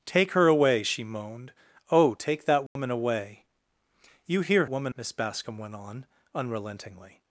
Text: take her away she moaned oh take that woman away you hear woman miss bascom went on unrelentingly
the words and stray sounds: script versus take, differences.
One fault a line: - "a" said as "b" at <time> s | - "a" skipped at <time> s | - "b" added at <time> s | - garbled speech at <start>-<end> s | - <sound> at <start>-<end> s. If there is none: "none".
- dropout at 2.7-2.8 s